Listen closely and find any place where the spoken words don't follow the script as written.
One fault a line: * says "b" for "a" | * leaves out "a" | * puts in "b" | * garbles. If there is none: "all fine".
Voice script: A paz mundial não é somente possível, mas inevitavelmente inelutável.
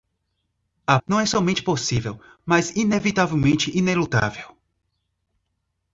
* leaves out "paz mundial"